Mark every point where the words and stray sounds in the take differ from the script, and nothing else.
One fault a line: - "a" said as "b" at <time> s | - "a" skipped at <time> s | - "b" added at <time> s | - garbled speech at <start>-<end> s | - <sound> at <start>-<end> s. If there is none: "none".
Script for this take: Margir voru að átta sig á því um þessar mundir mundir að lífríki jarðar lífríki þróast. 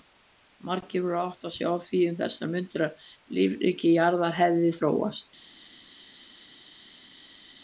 - "mundir" skipped at 2.8 s
- "lífríki" said as "hefði" at 4.4 s